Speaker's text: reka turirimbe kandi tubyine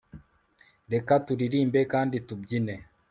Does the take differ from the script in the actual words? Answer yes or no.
no